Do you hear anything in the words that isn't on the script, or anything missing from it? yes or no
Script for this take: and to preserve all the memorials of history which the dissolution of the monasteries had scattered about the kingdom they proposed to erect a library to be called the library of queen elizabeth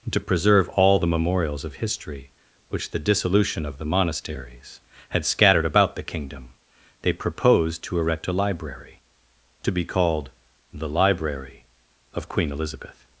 yes